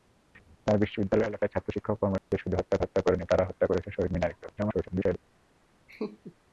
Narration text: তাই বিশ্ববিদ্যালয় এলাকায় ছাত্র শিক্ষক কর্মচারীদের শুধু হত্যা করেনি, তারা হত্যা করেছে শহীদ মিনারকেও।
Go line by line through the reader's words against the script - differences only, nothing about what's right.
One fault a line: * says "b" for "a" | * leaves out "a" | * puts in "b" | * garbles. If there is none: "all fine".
* puts in "হত্যা"
* garbles